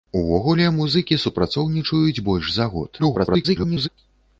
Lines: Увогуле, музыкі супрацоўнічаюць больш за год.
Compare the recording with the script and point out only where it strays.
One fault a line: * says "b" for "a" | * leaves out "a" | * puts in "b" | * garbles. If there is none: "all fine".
* garbles